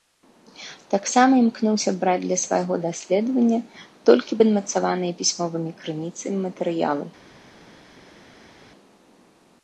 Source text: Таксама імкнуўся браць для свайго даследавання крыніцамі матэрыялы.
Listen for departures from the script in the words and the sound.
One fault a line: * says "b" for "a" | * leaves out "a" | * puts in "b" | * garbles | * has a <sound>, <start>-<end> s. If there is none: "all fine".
* puts in "толькі падмацаваныя пісьмовымі"